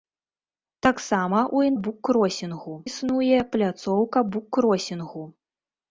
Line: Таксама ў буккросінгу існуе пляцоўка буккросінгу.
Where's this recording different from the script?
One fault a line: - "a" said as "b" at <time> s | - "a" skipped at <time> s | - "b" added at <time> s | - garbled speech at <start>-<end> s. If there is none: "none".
none